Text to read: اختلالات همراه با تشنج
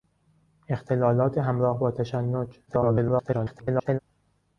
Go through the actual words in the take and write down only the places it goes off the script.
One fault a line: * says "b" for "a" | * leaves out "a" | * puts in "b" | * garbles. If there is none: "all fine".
* garbles